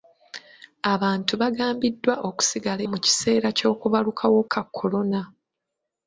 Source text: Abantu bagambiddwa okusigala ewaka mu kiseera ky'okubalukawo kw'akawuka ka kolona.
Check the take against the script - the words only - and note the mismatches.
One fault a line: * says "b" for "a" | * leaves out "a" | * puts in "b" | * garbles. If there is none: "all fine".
* leaves out "ewaka"
* leaves out "kw'akawuka"